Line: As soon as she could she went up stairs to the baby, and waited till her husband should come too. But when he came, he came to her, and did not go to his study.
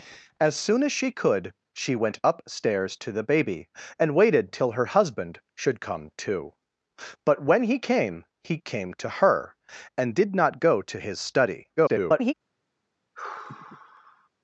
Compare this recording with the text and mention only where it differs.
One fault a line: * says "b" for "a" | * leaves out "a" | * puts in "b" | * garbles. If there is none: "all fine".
* garbles